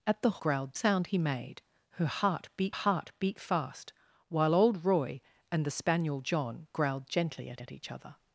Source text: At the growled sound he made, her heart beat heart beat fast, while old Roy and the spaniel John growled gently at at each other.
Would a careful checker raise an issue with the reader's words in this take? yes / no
no